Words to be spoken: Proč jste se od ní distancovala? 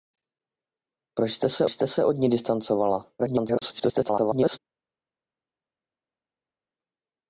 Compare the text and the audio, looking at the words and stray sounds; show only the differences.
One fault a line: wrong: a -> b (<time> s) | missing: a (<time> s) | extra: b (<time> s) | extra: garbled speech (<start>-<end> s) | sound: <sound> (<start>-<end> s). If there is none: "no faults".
extra: jste se (1.7 s)
extra: garbled speech (3.2-4.6 s)